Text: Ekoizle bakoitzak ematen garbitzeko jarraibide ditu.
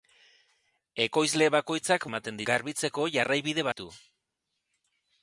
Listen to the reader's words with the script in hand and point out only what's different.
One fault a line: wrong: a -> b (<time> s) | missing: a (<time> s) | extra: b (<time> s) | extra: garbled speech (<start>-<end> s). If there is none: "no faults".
no faults